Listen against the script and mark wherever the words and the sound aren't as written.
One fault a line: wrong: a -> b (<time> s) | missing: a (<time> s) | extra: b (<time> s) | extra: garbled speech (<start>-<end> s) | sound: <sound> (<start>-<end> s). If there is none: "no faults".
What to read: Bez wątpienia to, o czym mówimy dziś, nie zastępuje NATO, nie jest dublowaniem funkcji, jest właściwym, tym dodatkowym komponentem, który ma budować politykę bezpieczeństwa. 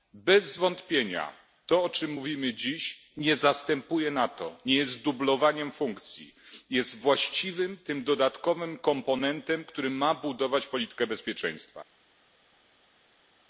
no faults